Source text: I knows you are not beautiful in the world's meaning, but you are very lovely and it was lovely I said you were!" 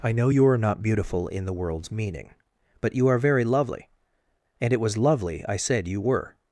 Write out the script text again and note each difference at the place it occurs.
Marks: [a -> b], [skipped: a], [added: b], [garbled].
I [knows -> know] you are not beautiful in the world's meaning, but you are very lovely and it was lovely I said you were!"